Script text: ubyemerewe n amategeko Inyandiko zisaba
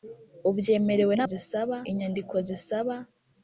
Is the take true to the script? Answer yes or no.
no